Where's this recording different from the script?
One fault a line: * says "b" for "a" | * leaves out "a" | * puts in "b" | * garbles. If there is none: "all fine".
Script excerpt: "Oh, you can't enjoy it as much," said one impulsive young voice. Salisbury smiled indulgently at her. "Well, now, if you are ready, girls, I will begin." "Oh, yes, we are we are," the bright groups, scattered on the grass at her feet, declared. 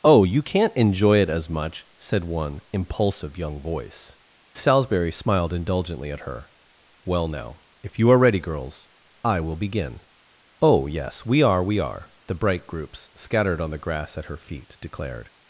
all fine